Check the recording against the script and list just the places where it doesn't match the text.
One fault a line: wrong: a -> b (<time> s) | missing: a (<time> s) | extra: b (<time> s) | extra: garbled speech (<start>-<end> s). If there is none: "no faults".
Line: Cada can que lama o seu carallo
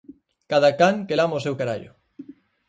no faults